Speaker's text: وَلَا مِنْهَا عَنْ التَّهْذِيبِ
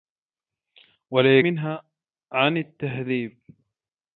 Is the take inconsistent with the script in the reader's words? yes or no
no